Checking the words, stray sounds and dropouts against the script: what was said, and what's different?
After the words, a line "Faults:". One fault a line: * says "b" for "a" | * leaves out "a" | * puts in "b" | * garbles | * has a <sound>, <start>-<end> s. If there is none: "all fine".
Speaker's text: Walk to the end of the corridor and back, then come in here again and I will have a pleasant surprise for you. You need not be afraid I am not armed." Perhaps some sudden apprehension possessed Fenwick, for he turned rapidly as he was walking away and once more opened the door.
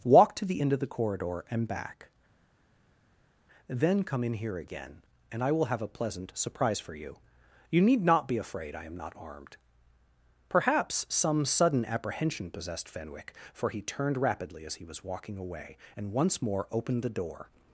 Walk to the end of the corridor and back, then come in here again and I will have a pleasant surprise for you. You need not be afraid I am not armed." Perhaps some sudden apprehension possessed Fenwick, for he turned rapidly as he was walking away and once more opened the door.
Faults:
all fine